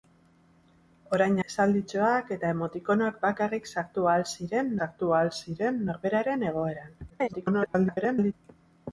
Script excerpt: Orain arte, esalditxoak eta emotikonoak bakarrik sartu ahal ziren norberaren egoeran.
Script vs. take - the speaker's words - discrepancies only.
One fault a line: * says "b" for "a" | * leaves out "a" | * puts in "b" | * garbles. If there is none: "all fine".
* leaves out "arte"
* puts in "sartu ahal ziren"
* garbles